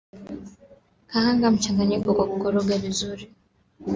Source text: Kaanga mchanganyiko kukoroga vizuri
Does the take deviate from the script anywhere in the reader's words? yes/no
yes